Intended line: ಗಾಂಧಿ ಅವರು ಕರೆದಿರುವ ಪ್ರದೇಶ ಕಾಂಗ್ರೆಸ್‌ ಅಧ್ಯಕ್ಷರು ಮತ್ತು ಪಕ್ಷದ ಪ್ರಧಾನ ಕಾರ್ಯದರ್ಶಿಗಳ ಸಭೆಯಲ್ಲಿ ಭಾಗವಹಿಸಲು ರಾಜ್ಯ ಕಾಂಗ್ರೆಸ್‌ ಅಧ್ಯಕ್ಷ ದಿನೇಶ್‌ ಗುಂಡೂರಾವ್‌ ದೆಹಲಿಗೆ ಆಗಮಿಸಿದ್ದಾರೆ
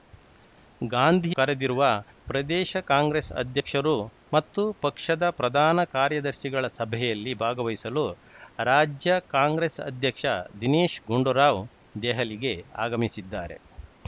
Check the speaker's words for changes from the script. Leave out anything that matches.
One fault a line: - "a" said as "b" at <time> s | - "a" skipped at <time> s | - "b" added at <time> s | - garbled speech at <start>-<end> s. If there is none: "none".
- "ಅವರು" skipped at 1.3 s